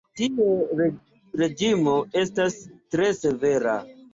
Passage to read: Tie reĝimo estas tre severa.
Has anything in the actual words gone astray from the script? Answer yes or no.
no